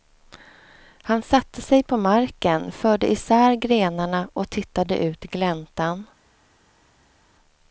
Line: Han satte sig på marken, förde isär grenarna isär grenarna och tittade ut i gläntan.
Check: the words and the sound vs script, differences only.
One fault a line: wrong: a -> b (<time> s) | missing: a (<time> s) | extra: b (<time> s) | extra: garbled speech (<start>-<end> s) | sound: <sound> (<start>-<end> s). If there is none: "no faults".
missing: isär grenarna (4.3 s)